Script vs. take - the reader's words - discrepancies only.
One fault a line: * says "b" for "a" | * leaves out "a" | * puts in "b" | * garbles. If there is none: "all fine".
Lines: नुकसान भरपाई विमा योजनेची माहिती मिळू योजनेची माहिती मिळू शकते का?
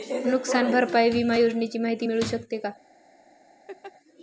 * leaves out "योजनेची माहिती मिळू"